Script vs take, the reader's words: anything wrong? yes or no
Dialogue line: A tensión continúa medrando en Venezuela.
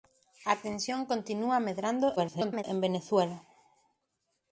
yes